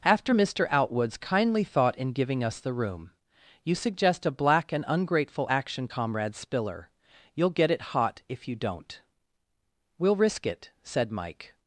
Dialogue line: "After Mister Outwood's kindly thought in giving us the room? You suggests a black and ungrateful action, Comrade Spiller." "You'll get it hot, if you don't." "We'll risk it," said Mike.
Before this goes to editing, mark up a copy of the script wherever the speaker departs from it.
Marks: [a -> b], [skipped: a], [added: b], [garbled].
"After Mister Outwood's kindly thought in giving us the room? You [suggests -> suggest] a black and ungrateful action, Comrade Spiller." "You'll get it hot, if you don't." "We'll risk it," said Mike.